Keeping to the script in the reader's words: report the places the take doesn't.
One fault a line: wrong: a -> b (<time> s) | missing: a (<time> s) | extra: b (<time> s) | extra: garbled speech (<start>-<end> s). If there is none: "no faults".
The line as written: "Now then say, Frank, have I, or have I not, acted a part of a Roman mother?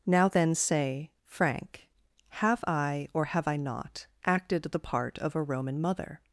wrong: a -> the (4.6 s)